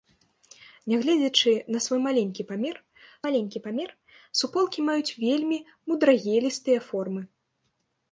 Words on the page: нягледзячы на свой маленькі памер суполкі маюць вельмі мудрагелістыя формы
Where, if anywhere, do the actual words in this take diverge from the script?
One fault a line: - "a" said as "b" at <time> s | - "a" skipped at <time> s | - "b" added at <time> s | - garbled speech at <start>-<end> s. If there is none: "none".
- "маленькі памер" added at 3.2 s